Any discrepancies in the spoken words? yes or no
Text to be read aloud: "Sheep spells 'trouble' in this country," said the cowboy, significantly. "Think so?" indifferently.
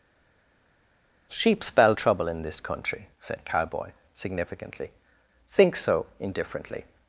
yes